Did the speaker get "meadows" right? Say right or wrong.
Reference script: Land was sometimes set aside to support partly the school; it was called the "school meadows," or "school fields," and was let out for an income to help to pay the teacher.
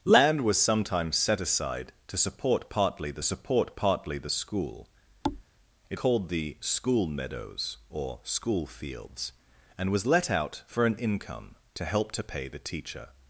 right